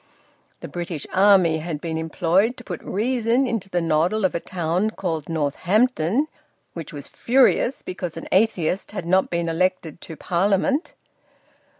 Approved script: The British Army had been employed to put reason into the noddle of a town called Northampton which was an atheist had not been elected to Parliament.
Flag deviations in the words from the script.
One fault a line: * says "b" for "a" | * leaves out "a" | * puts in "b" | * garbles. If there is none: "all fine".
* puts in "furious because"